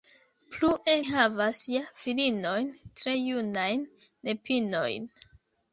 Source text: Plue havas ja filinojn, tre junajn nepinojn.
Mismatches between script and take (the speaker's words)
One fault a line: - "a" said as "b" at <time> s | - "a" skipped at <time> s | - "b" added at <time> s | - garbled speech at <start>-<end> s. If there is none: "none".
none